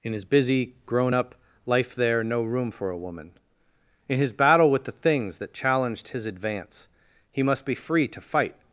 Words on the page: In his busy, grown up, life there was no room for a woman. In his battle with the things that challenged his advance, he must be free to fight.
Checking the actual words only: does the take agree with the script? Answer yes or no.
no